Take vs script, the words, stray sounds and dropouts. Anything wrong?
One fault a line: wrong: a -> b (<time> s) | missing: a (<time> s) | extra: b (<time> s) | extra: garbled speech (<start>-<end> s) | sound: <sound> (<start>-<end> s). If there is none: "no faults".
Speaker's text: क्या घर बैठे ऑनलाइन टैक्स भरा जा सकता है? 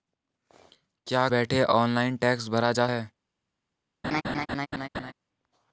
missing: घर (1.3 s)
missing: सकता (2.9 s)
sound: laugh (4.0-5.1 s)